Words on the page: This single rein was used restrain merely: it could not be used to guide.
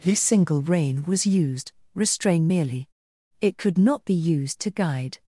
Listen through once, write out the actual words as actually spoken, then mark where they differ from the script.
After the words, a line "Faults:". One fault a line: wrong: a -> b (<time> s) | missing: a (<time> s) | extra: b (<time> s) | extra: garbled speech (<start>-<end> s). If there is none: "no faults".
This single rein was used restrain merely: it could not be used to guide.
Faults:
no faults